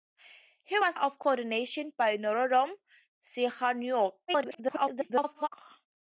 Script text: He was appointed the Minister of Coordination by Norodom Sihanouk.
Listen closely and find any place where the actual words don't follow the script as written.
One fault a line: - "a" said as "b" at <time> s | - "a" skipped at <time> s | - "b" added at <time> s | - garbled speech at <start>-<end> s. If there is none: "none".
- "appointed the Minister" skipped at 1.0 s
- garbled speech at 4.3-5.5 s